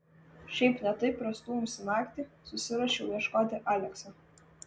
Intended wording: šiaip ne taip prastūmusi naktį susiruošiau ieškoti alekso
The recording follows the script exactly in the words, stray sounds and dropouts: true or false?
true